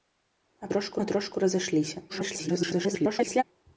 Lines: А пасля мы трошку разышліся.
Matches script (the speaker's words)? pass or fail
fail